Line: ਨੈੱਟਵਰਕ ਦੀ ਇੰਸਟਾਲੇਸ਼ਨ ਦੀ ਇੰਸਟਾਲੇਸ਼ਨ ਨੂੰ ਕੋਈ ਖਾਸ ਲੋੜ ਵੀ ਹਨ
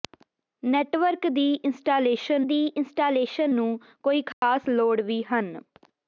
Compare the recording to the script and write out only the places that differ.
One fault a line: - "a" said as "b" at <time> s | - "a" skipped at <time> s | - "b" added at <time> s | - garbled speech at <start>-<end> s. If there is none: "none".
none